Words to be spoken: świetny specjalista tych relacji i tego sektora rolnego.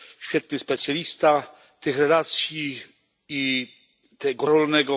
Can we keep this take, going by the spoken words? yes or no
no